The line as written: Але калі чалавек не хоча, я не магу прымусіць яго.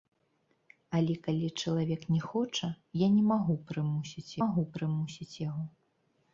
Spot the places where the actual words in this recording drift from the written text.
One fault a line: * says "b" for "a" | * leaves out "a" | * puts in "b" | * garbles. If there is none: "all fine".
* puts in "магу прымусіць"